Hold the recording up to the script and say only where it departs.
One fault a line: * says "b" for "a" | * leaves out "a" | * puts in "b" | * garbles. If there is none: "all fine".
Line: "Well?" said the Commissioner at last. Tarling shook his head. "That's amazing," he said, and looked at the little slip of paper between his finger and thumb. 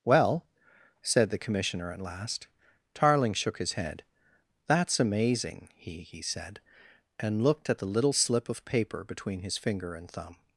* puts in "he"